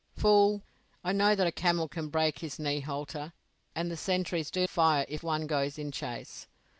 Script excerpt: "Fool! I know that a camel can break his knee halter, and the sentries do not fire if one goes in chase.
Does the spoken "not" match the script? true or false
false